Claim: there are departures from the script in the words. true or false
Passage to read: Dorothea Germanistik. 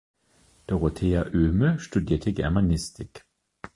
true